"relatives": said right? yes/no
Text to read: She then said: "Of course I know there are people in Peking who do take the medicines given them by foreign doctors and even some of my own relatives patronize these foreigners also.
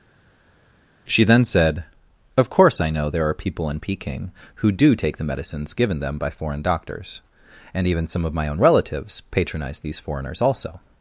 yes